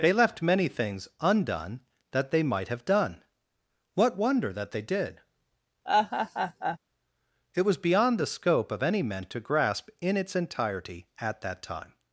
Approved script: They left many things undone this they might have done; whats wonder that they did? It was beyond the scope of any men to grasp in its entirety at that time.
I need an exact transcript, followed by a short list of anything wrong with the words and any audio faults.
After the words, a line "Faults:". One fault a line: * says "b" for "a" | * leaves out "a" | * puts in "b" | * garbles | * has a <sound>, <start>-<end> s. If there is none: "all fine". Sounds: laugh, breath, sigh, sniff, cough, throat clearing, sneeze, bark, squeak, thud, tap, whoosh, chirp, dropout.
They left many things undone that they might have done; what wonder that they did? It was beyond the scope of any men to grasp in its entirety at that time.
Faults:
* says "that" for "this"
* says "what" for "whats"
* has a laugh, 5.8-6.8 s